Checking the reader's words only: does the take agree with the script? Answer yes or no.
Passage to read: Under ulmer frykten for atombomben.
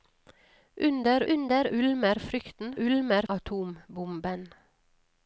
no